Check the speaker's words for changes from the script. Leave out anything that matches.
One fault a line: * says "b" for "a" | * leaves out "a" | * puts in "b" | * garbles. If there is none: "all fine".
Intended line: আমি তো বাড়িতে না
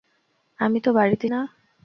all fine